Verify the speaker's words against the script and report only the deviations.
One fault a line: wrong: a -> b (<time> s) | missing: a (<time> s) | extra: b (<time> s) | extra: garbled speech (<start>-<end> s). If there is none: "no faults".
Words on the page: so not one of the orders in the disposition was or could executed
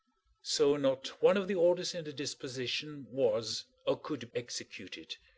no faults